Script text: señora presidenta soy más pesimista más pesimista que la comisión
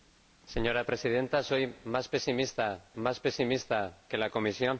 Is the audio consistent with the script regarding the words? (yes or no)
yes